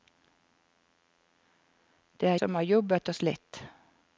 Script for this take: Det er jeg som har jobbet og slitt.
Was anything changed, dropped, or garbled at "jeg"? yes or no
yes